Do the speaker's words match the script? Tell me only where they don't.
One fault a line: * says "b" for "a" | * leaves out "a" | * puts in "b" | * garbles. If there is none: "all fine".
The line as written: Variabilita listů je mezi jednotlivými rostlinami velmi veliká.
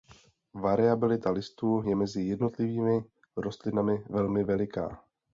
all fine